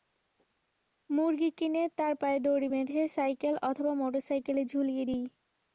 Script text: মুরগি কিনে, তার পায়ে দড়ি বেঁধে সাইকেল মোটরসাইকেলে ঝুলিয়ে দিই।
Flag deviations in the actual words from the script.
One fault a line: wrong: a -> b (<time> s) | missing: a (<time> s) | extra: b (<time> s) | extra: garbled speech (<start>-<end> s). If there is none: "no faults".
extra: অথবা (3.7 s)